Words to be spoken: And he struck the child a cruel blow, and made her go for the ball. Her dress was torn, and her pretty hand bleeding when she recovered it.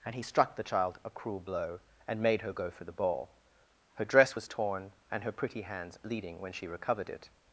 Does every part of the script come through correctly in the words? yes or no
no